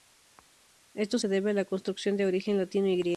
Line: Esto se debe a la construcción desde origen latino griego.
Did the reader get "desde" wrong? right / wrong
wrong